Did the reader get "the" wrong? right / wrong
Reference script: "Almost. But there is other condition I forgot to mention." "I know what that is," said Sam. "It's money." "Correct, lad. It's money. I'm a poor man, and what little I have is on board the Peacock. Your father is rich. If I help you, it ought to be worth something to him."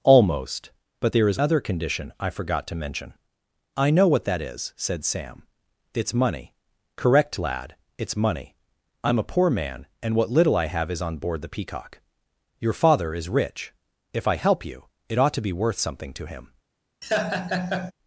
right